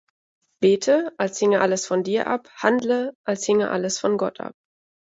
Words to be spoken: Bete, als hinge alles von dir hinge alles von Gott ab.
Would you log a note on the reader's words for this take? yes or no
yes